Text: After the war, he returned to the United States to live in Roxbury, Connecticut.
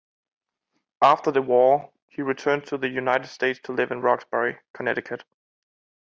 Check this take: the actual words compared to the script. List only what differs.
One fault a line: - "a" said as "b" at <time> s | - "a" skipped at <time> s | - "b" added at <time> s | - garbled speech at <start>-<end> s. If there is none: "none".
none